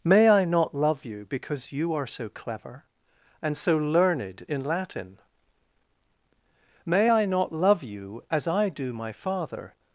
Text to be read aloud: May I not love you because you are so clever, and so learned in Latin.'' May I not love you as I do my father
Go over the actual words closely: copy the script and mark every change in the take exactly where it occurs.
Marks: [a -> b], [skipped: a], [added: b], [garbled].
May I not love you because you are so clever, and so learned in Latin.'' May I not love you as I do my father